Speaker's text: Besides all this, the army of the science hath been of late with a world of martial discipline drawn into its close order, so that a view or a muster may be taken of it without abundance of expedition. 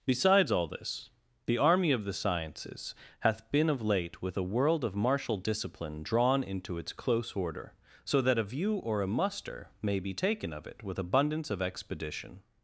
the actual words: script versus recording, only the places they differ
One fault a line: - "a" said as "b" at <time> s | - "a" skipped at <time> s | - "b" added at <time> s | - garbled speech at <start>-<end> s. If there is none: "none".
- "science" said as "sciences" at 2.1 s
- "without" said as "with" at 10.8 s